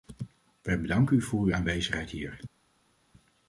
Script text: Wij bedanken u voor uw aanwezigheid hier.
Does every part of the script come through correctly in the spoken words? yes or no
yes